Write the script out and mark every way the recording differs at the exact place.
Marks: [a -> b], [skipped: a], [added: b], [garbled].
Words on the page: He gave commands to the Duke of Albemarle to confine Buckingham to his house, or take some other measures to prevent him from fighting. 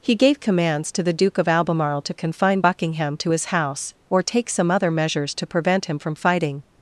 He gave commands to the Duke of Albemarle to confine Buckingham to his house, or take some other measures to prevent him from fighting.